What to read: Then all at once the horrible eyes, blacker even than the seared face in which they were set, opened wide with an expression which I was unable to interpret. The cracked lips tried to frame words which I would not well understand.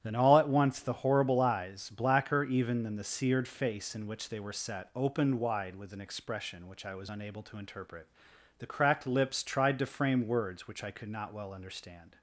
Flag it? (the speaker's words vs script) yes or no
yes